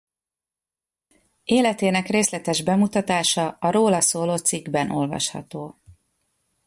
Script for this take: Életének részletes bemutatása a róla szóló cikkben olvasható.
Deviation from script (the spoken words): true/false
false